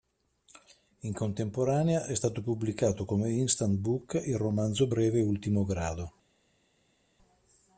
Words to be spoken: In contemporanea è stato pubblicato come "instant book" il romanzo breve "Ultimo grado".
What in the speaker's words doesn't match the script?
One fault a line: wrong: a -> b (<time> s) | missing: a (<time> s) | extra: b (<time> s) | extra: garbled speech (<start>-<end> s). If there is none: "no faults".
no faults